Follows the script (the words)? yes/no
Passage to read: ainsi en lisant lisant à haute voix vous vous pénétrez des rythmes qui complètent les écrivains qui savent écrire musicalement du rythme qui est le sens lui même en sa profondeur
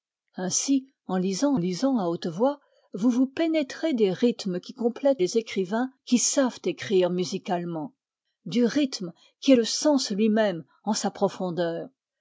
yes